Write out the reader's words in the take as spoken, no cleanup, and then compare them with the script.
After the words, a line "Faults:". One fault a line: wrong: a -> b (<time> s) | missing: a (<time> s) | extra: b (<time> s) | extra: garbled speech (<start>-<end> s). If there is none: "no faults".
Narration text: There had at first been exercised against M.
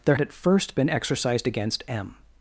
There at first been exercised against M.
Faults:
missing: had (0.1 s)